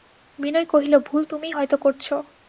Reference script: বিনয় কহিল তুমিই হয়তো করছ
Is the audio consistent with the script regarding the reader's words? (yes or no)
no